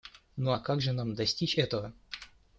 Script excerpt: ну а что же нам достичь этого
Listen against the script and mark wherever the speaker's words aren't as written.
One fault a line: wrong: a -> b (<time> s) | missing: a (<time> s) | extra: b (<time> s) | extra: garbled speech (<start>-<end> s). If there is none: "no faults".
wrong: что -> как (0.6 s)